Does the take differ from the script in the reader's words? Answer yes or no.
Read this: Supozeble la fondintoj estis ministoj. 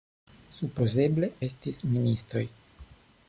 yes